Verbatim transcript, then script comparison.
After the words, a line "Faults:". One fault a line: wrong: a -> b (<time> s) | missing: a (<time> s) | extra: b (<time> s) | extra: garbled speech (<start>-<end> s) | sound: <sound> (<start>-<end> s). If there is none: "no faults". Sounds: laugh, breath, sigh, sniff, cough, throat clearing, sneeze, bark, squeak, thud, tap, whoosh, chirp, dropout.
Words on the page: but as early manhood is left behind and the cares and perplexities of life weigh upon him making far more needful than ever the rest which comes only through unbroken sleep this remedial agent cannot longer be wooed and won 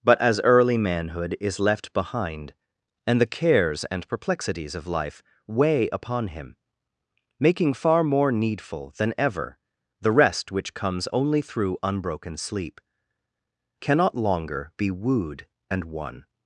but as early manhood is left behind and the cares and perplexities of life weigh upon him making far more needful than ever the rest which comes only through unbroken sleep cannot longer be wooed and won
Faults:
missing: this remedial agent (12.8 s)